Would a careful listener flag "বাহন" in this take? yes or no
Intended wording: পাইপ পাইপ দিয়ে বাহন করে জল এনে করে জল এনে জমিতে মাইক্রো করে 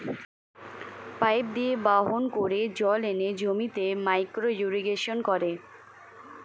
no